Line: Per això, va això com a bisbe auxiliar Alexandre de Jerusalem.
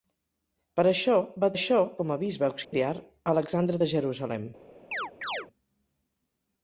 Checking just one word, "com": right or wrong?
right